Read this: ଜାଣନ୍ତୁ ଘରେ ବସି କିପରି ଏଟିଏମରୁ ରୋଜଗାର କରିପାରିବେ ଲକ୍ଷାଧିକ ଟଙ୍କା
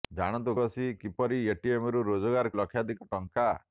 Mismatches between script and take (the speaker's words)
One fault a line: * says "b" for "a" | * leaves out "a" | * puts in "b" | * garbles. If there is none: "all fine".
* leaves out "ଘରେ"
* leaves out "କରିପାରିବେ"